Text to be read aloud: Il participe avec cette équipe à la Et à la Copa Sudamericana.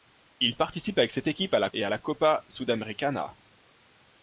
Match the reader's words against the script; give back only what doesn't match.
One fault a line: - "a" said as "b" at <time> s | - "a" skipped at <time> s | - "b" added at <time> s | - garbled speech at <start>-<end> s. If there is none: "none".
none